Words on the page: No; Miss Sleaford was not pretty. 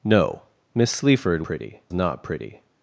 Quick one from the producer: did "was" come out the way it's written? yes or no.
no